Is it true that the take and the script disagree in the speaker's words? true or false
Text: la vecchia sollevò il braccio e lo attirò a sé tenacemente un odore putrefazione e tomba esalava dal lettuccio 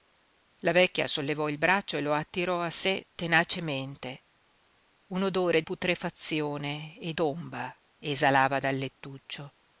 false